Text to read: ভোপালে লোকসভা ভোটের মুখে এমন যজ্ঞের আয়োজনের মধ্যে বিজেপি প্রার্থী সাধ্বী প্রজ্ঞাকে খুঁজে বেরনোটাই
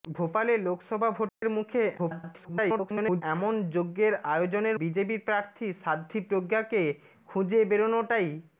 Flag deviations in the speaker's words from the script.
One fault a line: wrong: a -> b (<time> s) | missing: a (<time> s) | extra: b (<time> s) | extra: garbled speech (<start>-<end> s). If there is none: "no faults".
extra: garbled speech (2.0-3.2 s)
missing: মধ্যে (4.8 s)